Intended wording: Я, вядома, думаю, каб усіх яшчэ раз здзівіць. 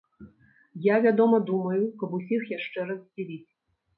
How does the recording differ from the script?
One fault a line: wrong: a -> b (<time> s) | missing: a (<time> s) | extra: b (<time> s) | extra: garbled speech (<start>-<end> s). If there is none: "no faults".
no faults